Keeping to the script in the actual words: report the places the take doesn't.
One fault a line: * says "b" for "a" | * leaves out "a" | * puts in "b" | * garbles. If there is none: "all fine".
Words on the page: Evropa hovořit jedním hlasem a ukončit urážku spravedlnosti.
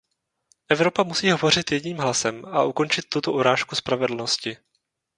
* puts in "musí"
* puts in "tuto"